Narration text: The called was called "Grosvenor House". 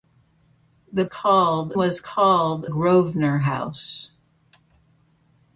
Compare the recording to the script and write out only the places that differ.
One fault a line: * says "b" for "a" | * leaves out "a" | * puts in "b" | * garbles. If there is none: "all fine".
all fine